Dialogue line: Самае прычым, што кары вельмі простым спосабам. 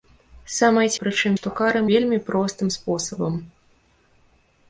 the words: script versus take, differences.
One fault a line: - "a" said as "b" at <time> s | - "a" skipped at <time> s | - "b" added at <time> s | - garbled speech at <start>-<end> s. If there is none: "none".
none